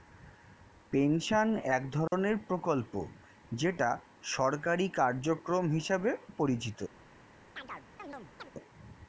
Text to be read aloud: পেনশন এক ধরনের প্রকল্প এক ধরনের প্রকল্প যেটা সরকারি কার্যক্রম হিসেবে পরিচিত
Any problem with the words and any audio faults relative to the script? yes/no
yes